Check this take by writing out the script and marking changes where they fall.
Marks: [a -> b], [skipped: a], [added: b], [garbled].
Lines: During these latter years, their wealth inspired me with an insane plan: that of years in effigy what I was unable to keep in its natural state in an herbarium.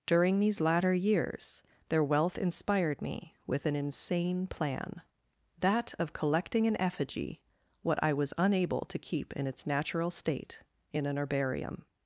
During these latter years, their wealth inspired me with an insane plan: that of [years -> collecting] in effigy what I was unable to keep in its natural state in an herbarium.